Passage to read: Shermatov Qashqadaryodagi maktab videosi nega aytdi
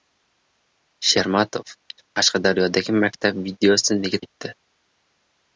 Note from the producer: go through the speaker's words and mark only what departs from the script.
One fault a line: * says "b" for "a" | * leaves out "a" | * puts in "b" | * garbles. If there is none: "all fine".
all fine